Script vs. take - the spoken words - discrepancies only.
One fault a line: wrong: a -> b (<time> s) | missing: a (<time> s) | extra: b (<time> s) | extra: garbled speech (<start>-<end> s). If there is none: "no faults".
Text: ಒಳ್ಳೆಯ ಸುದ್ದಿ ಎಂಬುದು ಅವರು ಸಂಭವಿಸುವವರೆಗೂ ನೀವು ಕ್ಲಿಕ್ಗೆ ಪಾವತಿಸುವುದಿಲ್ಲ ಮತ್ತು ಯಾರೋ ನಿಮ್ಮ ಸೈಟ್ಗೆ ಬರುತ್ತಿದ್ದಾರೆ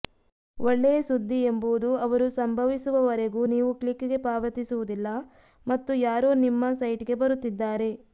no faults